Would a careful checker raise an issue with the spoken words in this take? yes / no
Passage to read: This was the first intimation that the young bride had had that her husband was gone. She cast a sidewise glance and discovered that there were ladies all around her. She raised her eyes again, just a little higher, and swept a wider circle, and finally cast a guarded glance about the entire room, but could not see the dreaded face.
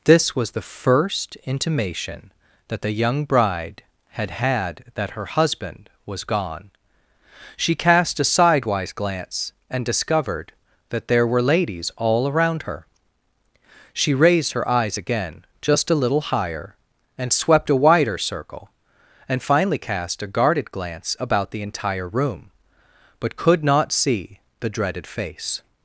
no